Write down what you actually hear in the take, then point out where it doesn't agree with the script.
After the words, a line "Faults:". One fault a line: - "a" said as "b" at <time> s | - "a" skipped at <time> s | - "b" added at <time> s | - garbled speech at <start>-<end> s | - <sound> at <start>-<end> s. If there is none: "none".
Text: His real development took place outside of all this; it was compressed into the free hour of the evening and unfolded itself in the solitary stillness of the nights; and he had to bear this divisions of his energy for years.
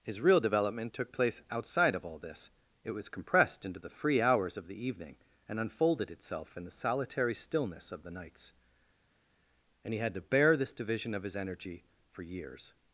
His real development took place outside of all this; it was compressed into the free hours of the evening and unfolded itself in the solitary stillness of the nights; and he had to bear this division of his energy for years.
Faults:
- "hour" said as "hours" at 4.2 s
- "divisions" said as "division" at 10.7 s